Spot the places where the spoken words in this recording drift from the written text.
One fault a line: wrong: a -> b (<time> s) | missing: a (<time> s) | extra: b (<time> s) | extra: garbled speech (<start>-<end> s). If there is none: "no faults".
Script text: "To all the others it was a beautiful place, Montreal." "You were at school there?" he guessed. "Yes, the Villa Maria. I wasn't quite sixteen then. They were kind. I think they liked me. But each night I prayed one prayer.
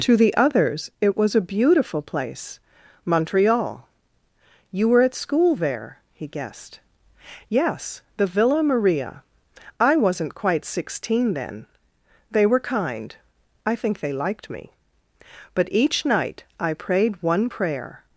missing: all (0.2 s)